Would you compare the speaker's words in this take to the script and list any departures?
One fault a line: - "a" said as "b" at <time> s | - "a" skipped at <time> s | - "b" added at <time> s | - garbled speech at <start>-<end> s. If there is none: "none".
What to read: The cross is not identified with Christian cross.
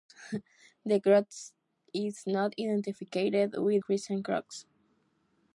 none